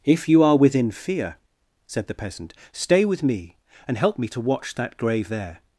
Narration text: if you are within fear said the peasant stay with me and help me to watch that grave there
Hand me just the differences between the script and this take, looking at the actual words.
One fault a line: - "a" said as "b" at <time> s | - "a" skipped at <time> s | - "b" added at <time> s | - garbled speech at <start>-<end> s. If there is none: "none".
none